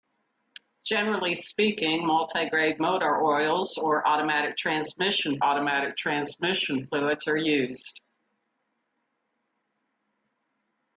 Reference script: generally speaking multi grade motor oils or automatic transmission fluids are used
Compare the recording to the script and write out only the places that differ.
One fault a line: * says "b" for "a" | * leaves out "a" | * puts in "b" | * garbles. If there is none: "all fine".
* puts in "automatic transmission"